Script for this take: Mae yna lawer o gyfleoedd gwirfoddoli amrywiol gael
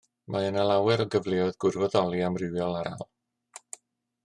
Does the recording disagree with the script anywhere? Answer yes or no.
no